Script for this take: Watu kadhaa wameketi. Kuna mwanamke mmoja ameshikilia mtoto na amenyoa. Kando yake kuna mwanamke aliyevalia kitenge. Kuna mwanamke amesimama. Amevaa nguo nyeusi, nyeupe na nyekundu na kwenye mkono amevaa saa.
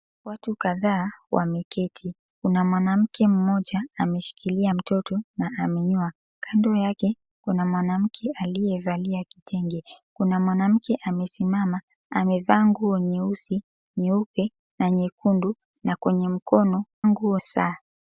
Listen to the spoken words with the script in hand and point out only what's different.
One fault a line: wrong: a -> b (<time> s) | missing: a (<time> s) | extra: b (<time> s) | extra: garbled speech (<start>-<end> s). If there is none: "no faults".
wrong: amevaa -> nguo (17.1 s)